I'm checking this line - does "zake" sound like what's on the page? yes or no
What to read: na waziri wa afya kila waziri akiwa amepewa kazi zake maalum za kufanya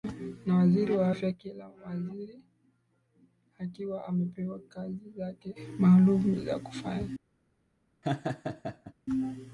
yes